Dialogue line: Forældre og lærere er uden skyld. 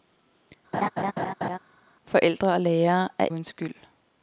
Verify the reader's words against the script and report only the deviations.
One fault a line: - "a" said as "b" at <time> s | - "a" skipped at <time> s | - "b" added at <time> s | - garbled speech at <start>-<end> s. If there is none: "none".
none